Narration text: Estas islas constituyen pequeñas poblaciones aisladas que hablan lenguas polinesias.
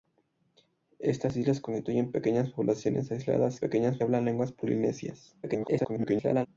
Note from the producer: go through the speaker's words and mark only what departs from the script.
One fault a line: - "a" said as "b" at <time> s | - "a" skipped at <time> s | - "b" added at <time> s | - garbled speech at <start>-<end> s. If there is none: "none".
- "que" said as "pequeñas" at 3.6 s
- garbled speech at 5.4-6.5 s